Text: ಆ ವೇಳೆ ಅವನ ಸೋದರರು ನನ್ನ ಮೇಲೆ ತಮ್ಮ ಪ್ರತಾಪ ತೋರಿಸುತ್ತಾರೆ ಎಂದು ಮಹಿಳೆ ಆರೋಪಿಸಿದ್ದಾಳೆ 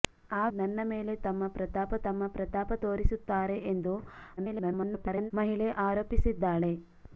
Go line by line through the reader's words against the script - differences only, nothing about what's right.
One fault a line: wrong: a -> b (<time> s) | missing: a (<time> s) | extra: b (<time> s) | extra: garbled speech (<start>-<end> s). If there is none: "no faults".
wrong: ವೇಳೆ ಅವನ ಸೋದರರು ನನ್ನ ಮೇಲೆ -> ನನ್ನ ಮೇಲೆ ತಮ್ಮ ಪ್ರತಾಪ (0.5 s)
extra: garbled speech (4.4-5.3 s)